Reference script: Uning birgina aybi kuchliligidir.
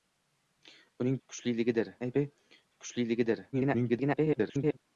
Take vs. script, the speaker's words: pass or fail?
fail